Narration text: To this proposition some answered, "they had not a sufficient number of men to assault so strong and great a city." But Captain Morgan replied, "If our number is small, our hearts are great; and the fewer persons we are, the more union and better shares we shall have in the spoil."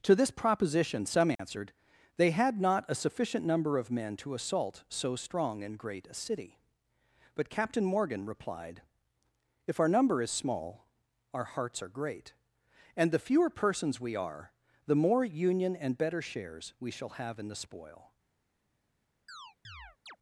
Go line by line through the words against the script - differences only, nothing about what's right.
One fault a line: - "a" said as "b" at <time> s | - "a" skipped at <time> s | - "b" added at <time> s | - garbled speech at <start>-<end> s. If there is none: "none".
none